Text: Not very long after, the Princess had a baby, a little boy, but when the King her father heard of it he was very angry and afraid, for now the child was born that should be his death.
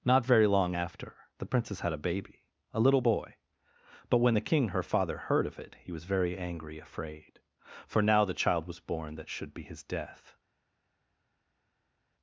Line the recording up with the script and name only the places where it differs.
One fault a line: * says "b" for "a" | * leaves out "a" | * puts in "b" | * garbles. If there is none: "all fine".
* leaves out "and"